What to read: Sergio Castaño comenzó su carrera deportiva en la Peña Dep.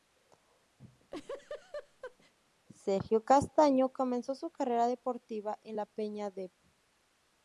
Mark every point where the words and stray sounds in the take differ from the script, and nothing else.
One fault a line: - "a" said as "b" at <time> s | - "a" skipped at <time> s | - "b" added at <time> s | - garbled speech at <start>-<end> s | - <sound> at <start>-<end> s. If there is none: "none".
- laugh at 0.8-2.3 s